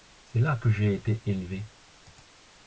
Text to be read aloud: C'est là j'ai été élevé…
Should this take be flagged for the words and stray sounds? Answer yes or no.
yes